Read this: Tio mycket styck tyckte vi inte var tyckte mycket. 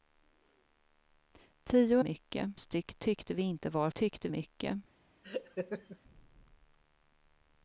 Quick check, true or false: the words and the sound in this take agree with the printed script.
false